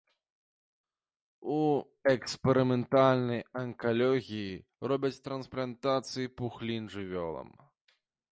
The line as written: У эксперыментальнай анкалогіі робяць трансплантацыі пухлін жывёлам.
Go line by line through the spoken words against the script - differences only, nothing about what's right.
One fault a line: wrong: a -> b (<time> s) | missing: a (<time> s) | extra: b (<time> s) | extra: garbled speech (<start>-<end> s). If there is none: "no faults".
no faults